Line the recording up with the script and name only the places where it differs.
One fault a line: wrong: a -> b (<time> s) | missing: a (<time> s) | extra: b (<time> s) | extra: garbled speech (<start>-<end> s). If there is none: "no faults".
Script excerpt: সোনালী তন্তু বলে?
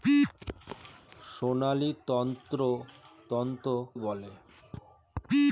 no faults